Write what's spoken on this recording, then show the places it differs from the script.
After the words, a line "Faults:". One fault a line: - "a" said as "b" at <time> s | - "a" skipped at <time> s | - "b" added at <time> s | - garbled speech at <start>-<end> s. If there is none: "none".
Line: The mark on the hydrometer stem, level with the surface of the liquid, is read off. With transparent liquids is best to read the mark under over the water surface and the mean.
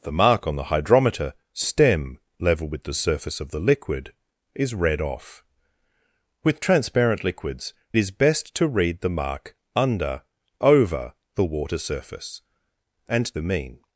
The mark on the hydrometer stem, level with the surface of the liquid, is read off. With transparent liquids is best to read the mark under over the water surface and the mean.
Faults:
none